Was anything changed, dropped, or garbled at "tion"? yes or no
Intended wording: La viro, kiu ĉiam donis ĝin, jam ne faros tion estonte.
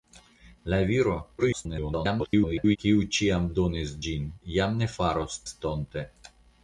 yes